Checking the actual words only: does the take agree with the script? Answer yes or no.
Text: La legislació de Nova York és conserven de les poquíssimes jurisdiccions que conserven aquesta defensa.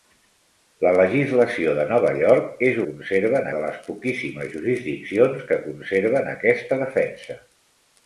yes